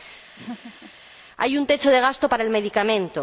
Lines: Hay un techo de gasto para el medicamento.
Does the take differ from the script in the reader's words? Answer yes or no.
no